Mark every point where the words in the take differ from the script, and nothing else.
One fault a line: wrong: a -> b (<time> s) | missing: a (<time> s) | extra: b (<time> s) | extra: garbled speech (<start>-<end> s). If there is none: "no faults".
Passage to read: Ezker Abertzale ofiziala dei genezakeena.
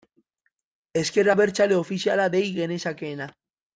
no faults